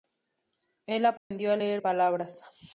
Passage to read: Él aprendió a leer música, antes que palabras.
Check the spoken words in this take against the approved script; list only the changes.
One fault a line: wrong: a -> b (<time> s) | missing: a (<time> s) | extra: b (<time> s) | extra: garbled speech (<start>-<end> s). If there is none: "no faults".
missing: música antes que (1.8 s)